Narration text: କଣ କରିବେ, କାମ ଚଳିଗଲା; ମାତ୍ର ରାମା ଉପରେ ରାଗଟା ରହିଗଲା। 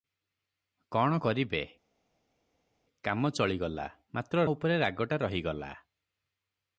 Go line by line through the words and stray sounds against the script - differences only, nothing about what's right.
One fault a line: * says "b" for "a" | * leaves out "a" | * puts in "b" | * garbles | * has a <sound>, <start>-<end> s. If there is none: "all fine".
* leaves out "ରାମା"